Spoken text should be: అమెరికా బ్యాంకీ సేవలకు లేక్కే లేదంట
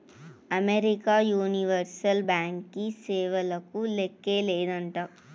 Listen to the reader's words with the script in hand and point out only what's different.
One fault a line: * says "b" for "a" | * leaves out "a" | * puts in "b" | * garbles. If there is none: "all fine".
* puts in "యూనివర్సల్"